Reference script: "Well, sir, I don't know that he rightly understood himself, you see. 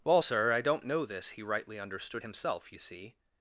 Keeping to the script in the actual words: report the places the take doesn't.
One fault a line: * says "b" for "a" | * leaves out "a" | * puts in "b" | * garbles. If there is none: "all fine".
* says "this" for "that"